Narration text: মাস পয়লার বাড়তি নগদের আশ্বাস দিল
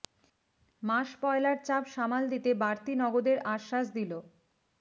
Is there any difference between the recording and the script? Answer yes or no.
yes